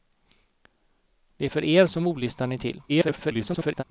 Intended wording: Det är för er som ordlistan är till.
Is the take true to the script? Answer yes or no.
no